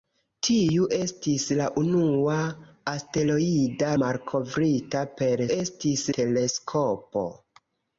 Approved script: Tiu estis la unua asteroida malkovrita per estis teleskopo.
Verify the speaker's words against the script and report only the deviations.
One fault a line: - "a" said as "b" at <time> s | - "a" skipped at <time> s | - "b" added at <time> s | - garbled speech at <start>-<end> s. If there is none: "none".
none